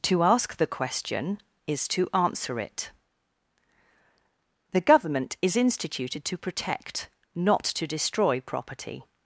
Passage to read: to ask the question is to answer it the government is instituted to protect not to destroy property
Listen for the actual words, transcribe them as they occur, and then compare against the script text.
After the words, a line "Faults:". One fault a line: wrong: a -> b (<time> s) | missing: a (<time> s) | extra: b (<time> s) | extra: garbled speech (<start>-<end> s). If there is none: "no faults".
to ask the question is to answer it the government is instituted to protect not to destroy property
Faults:
no faults